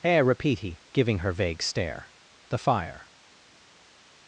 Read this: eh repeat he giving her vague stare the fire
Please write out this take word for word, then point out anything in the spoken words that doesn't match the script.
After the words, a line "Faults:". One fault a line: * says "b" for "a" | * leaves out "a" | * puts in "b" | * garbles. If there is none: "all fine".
eh repeat he giving her vague stare the fire
Faults:
all fine